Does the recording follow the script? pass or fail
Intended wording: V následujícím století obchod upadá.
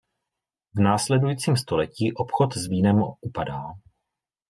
fail